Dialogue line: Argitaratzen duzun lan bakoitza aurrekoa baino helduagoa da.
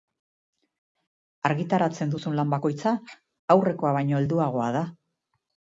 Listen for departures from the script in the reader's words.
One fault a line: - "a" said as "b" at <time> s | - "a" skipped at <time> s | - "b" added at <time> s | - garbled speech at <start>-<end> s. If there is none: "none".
none